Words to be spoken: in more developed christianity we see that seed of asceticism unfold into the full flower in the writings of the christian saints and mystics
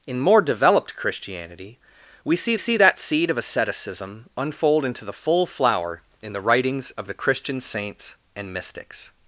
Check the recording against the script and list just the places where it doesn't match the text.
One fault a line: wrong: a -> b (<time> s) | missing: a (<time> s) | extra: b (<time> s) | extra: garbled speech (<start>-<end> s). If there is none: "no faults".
extra: see (2.6 s)